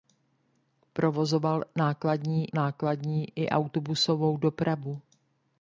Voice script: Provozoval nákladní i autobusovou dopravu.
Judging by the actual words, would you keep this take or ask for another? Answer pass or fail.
fail